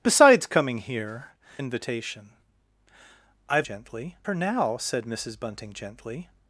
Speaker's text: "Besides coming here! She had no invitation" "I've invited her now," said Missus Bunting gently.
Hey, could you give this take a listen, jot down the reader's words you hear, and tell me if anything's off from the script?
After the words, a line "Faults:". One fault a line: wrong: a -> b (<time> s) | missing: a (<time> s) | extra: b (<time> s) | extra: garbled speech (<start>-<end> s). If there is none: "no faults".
"Besides coming here! Invitation" "I've gently her now," said Missus Bunting gently.
Faults:
missing: She had no (1.4 s)
wrong: invited -> gently (3.6 s)